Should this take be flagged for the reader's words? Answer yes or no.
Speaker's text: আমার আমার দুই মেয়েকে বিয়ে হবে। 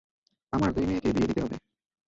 yes